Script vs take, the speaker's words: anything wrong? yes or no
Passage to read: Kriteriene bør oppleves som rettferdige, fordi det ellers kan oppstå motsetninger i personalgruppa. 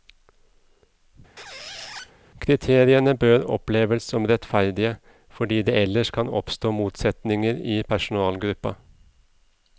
no